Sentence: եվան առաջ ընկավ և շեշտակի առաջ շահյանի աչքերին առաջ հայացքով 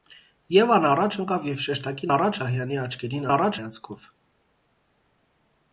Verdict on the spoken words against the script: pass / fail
pass